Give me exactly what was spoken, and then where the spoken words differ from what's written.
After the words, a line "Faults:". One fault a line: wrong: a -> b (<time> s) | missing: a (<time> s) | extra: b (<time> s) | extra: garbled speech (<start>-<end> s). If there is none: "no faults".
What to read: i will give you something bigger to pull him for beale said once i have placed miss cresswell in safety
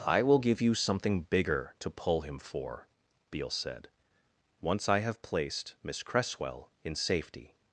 i will give you something bigger to pull him for beale said once i have placed miss cresswell in safety
Faults:
no faults